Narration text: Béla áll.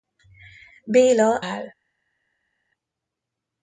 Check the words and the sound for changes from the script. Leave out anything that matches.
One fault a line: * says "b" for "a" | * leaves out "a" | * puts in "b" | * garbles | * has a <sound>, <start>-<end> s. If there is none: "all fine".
all fine